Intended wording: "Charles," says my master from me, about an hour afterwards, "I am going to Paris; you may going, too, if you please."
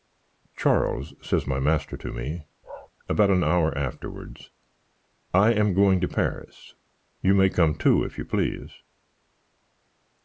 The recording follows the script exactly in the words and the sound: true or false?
false